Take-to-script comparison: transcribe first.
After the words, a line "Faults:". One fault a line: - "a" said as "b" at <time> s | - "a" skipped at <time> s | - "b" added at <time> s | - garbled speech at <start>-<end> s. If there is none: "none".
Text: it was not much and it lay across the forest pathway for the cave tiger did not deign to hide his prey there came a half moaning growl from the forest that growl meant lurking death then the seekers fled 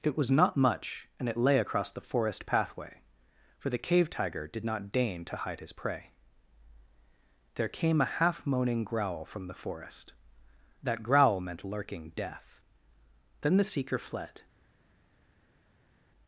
it was not much and it lay across the forest pathway for the cave tiger did not deign to hide his prey there came a half moaning growl from the forest that growl meant lurking death then the seeker fled
Faults:
- "seekers" said as "seeker" at 13.6 s